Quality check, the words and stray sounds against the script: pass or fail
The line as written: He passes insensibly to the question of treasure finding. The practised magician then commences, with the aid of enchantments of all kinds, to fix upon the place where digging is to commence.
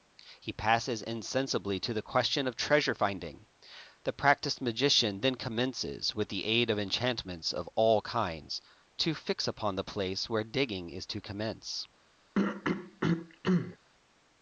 fail